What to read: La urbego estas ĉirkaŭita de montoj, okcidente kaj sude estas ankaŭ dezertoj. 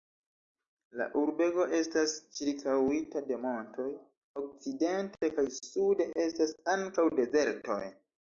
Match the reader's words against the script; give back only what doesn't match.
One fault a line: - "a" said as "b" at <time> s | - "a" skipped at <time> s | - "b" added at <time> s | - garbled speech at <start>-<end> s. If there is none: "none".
none